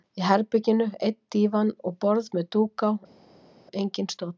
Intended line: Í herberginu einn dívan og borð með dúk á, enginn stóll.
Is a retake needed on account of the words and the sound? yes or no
no